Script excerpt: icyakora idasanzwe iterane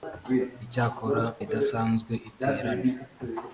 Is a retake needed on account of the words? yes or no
no